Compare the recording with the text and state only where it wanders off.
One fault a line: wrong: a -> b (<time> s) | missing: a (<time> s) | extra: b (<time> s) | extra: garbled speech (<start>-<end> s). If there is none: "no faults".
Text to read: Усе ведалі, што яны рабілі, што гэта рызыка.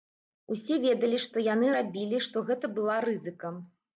extra: была (2.8 s)